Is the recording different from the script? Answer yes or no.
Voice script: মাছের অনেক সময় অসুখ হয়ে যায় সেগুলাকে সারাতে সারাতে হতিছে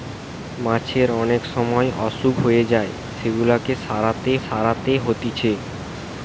no